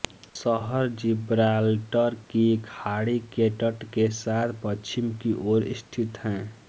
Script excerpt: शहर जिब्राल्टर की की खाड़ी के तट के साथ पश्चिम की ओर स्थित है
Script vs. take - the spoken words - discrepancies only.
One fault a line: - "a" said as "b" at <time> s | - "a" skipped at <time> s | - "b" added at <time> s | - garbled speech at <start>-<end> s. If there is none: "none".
- "की" skipped at 2.5 s